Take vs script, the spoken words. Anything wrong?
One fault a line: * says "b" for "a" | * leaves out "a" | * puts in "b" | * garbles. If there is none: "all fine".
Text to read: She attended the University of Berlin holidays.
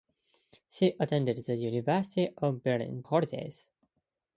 all fine